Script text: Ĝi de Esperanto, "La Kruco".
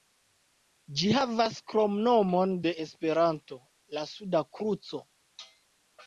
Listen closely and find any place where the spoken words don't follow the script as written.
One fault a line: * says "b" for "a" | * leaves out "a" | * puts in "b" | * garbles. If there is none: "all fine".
* puts in "havas kromnomon"
* puts in "Suda"